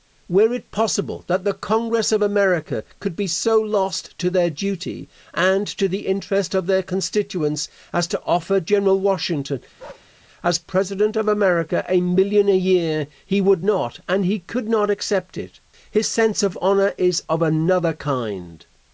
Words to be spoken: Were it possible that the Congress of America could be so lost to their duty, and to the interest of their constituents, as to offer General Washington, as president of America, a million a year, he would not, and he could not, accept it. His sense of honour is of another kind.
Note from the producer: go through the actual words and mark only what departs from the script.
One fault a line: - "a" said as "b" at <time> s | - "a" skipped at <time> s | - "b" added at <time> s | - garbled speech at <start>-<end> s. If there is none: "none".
none